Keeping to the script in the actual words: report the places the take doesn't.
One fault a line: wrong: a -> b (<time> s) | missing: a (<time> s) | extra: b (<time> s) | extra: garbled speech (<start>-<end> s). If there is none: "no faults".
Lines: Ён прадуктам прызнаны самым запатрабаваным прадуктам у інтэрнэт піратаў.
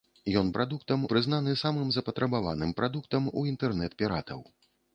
no faults